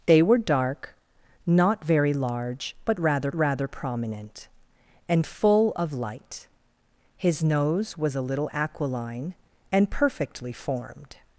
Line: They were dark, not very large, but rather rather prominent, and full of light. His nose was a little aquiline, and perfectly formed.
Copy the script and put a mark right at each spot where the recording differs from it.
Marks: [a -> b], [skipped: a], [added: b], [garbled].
They were dark, not very large, but rather rather prominent, and full of light. His nose was a little aquiline, and perfectly formed.